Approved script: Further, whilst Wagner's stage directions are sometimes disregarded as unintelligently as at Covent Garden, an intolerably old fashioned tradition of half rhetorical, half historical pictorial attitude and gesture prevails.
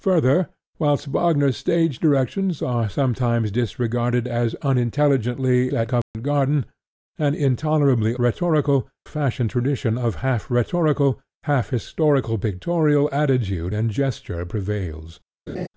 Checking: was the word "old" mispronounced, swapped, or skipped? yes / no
yes